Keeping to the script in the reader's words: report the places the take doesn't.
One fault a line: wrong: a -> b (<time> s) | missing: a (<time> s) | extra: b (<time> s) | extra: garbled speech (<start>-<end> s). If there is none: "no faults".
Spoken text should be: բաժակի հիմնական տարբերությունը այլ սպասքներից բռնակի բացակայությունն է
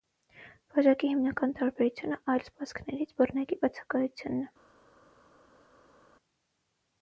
no faults